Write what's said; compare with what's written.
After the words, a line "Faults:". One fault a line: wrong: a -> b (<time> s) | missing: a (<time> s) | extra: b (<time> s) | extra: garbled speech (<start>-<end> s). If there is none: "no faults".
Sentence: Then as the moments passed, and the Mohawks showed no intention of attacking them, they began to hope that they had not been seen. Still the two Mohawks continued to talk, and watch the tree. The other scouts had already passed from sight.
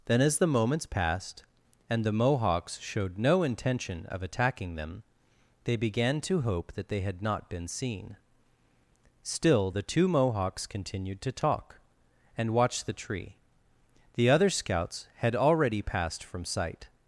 Then as the moments passed, and the Mohawks showed no intention of attacking them, they began to hope that they had not been seen. Still the two Mohawks continued to talk, and watch the tree. The other scouts had already passed from sight.
Faults:
no faults